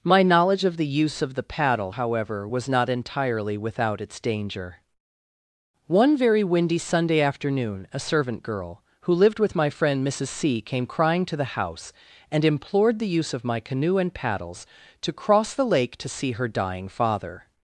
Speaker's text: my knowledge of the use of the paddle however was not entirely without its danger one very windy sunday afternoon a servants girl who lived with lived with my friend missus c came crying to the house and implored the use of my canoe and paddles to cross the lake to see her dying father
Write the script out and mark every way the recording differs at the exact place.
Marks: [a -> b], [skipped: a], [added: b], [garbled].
my knowledge of the use of the paddle however was not entirely without its danger one very windy sunday afternoon a [servants -> servant] girl who lived with [skipped: lived with] my friend missus c came crying to the house and implored the use of my canoe and paddles to cross the lake to see her dying father